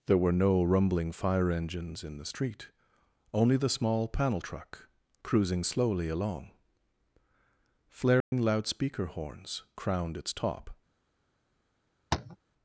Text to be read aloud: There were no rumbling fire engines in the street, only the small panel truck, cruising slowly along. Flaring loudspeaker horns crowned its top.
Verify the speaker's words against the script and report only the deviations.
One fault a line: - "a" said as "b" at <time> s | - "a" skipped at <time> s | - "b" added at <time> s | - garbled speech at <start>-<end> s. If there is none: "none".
none